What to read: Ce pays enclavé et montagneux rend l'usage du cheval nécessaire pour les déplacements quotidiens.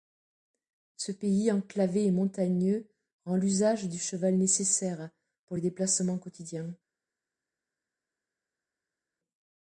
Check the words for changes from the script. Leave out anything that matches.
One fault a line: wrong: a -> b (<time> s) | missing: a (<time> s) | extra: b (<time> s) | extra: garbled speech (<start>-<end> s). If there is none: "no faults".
no faults